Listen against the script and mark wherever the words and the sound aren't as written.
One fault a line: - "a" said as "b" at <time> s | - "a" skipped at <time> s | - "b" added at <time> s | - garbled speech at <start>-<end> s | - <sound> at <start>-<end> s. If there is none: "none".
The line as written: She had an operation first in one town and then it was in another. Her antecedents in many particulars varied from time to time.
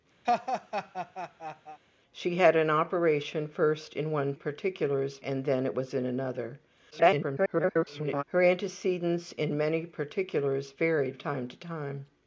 - laugh at 0.2-1.8 s
- "town" said as "particulars" at 4.3 s
- garbled speech at 6.9-8.2 s
- "from" skipped at 11.2 s